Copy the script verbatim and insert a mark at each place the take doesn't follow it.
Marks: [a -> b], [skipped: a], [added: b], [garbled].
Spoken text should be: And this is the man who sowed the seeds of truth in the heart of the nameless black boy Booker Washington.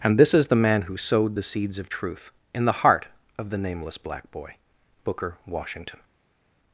And this is the man who sowed the seeds of truth in the heart of the nameless black boy Booker Washington.